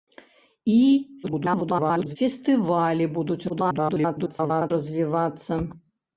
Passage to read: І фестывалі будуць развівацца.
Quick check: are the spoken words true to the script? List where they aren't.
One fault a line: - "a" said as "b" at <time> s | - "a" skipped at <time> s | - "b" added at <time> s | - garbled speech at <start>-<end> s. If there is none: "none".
- garbled speech at 1.2-2.2 s
- garbled speech at 3.5-4.7 s